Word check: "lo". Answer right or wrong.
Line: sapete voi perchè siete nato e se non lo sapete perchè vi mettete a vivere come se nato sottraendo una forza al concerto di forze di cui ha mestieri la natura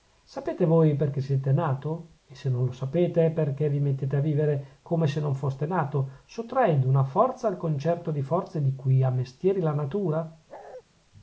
right